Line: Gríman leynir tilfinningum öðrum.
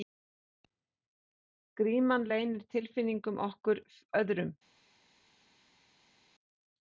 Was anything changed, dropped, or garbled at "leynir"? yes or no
no